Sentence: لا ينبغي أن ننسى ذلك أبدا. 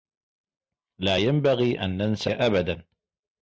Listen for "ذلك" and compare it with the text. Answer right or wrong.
wrong